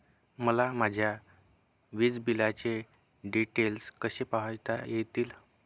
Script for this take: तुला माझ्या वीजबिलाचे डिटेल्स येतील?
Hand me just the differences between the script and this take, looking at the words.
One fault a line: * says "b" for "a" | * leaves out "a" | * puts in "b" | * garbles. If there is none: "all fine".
* says "मला" for "तुला"
* puts in "कसे पाहता"